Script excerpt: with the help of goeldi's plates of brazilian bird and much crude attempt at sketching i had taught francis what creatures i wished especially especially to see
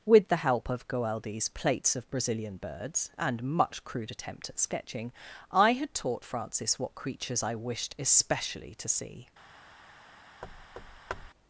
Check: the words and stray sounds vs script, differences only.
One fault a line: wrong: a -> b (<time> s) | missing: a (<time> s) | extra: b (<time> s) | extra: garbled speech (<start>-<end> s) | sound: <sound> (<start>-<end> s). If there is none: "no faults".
wrong: bird -> birds (2.6 s)
missing: especially (8.7 s)
sound: thud (10.4-11.3 s)